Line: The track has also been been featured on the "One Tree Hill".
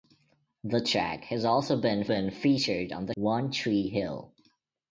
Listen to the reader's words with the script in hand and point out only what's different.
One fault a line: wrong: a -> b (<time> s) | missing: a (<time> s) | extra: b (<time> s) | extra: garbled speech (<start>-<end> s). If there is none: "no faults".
no faults